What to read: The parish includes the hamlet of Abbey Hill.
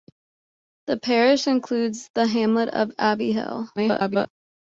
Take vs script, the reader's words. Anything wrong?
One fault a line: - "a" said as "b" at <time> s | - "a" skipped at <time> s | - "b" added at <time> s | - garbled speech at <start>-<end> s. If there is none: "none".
- garbled speech at 3.8-4.3 s